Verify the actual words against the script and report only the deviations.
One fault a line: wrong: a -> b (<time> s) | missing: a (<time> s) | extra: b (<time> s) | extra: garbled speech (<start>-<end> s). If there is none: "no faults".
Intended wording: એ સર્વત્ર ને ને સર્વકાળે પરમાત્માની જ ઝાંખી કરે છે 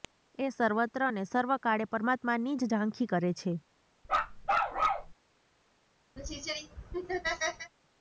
missing: ને (1.2 s)